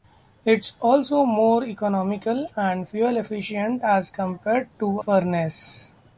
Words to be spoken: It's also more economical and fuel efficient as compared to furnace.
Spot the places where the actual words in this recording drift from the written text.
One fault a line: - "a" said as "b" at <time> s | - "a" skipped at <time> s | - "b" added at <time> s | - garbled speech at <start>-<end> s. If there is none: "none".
none